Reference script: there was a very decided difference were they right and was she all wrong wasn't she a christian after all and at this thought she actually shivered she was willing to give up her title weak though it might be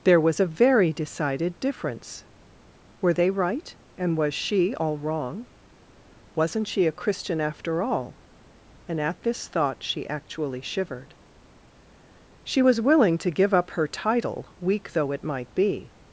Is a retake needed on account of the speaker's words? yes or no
no